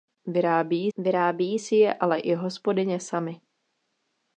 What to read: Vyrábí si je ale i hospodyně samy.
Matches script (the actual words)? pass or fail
fail